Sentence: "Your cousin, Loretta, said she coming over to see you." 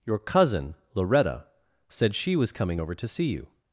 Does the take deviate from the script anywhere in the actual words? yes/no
yes